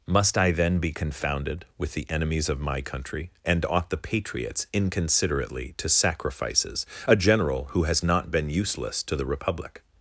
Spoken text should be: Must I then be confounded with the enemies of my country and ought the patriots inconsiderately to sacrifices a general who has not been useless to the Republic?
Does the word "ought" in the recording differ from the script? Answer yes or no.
no